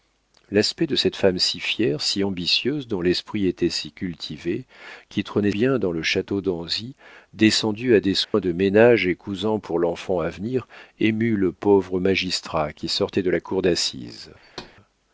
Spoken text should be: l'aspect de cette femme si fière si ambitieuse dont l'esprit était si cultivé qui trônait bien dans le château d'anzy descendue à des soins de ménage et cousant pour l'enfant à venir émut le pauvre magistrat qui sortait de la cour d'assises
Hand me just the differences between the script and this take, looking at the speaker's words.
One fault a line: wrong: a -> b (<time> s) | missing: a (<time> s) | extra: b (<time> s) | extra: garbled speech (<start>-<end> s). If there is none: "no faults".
no faults